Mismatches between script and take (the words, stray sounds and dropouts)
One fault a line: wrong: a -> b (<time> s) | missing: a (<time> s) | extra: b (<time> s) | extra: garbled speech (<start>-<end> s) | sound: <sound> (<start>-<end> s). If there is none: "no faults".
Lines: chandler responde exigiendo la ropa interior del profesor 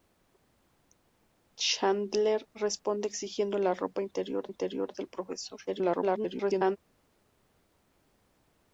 extra: interior (4.5 s)
extra: garbled speech (5.7-6.8 s)